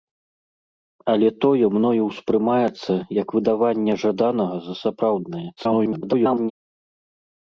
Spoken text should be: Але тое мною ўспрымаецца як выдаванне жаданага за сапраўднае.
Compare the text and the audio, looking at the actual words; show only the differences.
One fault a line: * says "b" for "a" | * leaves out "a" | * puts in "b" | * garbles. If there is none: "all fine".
* garbles